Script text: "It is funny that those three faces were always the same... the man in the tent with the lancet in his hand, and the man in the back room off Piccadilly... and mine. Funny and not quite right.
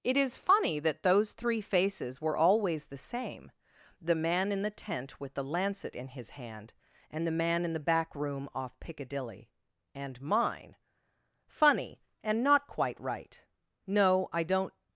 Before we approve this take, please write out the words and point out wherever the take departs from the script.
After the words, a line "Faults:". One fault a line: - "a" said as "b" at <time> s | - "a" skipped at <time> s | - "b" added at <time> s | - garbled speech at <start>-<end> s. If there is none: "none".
"It is funny that those three faces were always the same... the man in the tent with the lancet in his hand, and the man in the back room off Piccadilly... and mine. Funny and not quite right. No, I don't
Faults:
- "No I don't" added at 13.8 s